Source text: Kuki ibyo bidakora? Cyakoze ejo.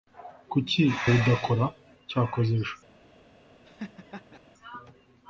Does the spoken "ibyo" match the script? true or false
false